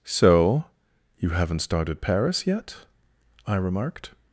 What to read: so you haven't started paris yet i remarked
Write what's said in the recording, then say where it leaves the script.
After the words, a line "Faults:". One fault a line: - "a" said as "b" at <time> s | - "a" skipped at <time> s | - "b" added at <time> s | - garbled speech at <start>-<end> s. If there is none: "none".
so you haven't started paris yet i remarked
Faults:
none